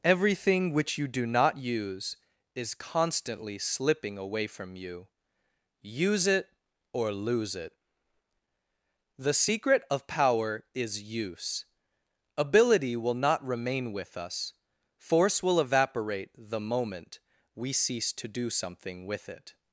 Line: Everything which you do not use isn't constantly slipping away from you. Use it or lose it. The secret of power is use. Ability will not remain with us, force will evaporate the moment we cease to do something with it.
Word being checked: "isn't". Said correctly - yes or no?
no